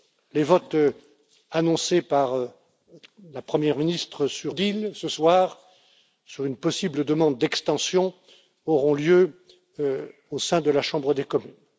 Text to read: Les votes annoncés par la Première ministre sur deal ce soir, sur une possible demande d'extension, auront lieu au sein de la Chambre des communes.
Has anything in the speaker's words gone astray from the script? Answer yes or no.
no